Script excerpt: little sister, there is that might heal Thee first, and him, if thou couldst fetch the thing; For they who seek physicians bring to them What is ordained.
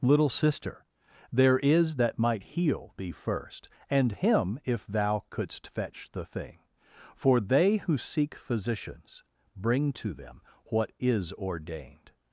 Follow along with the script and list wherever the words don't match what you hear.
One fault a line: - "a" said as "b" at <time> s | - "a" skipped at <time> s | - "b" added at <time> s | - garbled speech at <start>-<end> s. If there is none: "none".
none